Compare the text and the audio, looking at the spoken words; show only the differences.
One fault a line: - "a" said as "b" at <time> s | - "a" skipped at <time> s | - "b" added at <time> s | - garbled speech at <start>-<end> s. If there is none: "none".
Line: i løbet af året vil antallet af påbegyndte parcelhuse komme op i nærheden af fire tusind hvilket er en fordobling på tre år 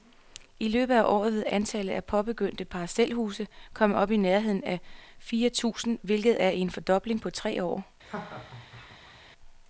none